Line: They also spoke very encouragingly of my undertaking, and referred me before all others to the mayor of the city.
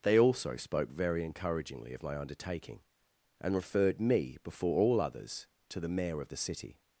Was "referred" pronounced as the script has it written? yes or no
yes